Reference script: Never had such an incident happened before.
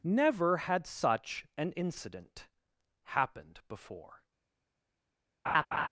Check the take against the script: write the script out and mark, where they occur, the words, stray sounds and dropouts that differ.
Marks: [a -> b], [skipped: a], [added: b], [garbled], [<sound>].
Never had such an incident happened before. [laugh]